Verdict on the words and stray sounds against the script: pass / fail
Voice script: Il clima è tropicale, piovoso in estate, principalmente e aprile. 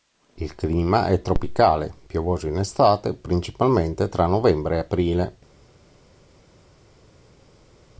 fail